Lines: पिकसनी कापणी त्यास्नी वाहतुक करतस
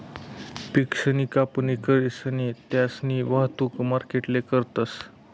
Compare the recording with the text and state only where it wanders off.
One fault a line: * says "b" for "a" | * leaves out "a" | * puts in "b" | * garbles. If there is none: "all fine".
* puts in "करीसन"
* puts in "मार्केटले"